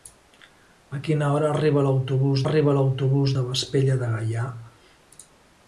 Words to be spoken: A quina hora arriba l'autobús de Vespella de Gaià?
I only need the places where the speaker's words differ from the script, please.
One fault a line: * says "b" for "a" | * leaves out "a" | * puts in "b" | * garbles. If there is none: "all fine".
* puts in "arriba l'autobús"